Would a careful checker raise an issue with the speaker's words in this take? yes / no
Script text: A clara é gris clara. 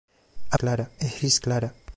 no